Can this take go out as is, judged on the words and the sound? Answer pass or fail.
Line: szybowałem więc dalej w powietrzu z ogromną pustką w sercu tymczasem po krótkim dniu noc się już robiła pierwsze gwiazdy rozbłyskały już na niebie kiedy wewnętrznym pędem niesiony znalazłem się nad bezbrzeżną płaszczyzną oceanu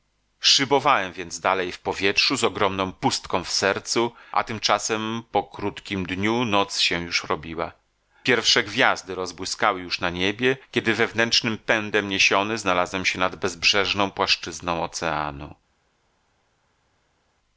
fail